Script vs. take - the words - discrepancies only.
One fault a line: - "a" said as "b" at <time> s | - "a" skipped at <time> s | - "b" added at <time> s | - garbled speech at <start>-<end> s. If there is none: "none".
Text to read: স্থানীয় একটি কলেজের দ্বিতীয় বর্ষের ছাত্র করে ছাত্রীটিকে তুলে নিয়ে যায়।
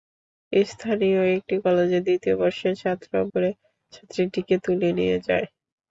none